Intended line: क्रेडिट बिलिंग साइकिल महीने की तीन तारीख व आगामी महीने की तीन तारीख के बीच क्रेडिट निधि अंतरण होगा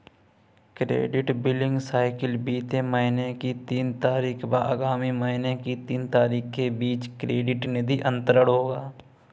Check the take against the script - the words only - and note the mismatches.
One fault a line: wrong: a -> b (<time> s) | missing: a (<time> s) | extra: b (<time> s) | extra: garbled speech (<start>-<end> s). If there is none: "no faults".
extra: बीते (2.5 s)